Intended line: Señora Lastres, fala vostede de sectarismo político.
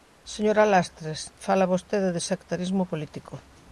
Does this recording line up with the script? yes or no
yes